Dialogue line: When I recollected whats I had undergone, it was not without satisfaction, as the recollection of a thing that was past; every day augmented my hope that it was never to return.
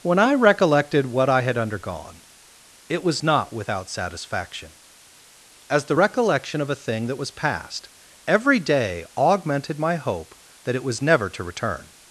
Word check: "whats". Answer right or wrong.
wrong